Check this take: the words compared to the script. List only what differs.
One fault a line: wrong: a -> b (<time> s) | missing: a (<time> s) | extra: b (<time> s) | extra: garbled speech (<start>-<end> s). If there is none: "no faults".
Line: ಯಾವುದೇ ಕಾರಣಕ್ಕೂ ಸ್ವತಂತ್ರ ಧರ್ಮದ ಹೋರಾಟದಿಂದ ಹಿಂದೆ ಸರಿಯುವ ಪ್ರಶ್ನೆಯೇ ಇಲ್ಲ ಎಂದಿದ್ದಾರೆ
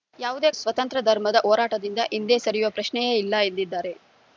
missing: ಕಾರಣಕ್ಕೂ (0.5 s)